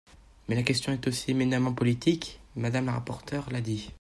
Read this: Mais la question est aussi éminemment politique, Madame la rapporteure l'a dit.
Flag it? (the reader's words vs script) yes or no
no